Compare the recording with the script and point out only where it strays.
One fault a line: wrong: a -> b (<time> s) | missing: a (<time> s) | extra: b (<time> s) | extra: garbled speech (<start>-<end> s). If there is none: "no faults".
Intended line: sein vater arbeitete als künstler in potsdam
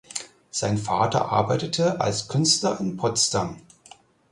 no faults